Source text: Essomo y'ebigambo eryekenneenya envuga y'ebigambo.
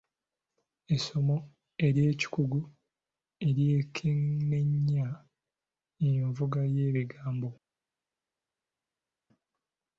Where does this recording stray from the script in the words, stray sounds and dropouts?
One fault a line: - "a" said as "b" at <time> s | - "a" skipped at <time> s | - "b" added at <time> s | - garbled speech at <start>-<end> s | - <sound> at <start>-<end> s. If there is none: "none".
- "y'ebigambo" said as "ery'ekikugu" at 1.9 s